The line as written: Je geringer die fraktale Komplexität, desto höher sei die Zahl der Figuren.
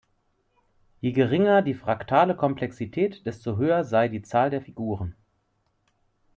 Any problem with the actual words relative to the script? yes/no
no